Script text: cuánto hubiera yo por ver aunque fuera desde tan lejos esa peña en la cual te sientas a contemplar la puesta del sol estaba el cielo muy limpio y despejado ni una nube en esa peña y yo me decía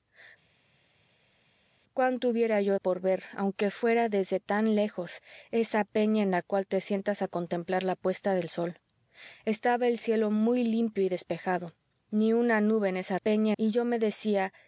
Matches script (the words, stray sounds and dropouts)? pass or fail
pass